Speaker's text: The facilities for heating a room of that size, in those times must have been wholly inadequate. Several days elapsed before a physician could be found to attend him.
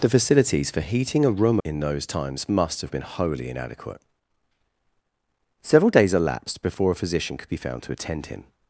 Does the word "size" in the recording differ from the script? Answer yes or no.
yes